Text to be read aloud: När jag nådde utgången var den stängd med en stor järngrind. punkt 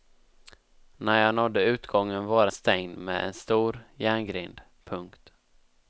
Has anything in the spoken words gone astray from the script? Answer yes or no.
yes